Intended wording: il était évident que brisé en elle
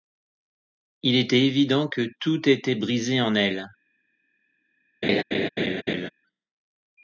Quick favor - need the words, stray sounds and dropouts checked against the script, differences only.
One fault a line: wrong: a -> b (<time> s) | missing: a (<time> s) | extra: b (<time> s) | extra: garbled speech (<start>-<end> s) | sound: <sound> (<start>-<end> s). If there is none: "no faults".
extra: tout était (2.2 s)
sound: laugh (5.0-6.1 s)